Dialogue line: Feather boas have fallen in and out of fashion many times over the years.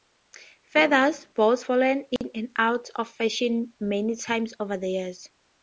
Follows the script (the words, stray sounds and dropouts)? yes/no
no